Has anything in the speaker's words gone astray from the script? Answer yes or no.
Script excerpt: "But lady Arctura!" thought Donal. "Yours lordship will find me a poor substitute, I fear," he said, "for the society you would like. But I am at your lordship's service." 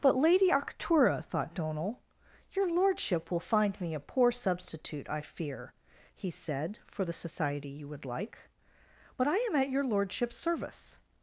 yes